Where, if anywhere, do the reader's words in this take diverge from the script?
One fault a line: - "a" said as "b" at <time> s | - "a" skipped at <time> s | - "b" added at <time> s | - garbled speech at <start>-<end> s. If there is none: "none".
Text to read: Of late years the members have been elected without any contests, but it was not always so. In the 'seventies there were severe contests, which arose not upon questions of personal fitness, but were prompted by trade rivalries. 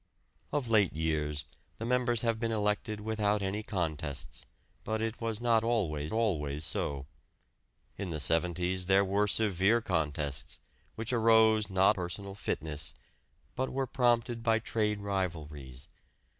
- "always" added at 6.1 s
- "upon questions of" skipped at 12.0 s